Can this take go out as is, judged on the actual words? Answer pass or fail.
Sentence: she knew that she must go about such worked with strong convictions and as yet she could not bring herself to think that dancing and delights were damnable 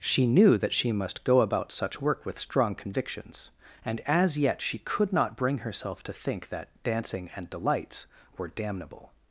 fail